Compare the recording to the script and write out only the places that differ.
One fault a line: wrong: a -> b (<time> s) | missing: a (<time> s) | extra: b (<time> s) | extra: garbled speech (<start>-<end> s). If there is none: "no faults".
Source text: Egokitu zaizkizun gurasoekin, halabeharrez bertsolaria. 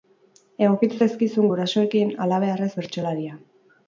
no faults